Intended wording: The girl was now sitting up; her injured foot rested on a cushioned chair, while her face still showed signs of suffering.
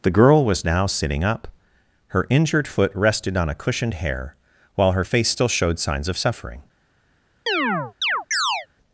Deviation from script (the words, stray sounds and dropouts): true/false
true